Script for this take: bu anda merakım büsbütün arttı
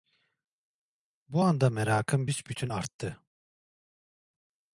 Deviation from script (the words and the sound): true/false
false